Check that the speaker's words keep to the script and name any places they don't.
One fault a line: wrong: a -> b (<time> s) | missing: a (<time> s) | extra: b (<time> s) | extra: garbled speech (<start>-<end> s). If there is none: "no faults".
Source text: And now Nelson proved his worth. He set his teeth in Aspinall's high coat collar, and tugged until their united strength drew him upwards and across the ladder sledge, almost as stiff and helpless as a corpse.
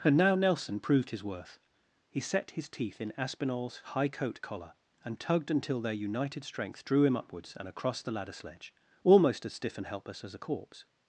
no faults